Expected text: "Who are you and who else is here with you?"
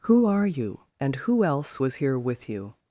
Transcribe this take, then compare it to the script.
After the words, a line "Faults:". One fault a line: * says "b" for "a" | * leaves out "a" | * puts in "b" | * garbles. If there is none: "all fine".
"Who are you and who else was here with you?"
Faults:
* says "was" for "is"